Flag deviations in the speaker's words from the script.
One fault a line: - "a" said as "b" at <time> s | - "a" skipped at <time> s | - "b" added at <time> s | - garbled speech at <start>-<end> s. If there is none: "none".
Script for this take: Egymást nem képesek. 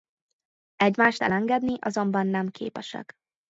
- "elengedni azonban" added at 1.2 s